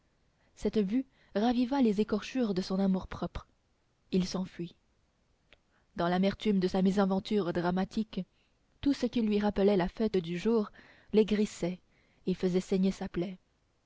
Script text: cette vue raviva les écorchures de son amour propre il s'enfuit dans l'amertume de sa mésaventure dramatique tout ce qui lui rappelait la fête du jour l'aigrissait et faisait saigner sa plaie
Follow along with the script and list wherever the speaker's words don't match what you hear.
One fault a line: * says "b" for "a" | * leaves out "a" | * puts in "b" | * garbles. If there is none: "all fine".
all fine